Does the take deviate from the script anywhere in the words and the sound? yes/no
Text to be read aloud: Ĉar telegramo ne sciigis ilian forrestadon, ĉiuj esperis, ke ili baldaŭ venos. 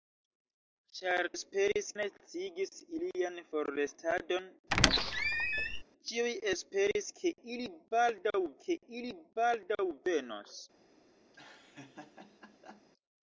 yes